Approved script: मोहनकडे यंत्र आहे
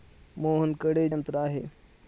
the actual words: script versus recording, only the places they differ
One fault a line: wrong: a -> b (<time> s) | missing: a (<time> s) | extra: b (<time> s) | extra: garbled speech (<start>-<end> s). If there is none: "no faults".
no faults